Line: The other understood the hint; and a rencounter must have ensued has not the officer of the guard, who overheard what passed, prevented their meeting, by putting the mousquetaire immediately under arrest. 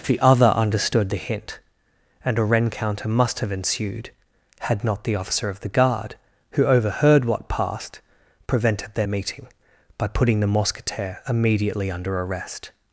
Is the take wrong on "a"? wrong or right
right